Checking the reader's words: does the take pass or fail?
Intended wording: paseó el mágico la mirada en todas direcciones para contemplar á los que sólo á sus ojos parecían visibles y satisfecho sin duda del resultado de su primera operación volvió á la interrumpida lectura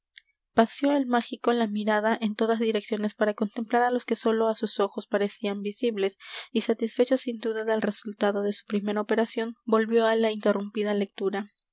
pass